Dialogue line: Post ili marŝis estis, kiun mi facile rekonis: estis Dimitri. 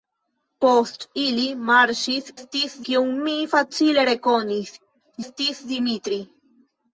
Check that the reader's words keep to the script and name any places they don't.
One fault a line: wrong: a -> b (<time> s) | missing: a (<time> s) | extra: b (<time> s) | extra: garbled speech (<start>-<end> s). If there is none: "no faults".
no faults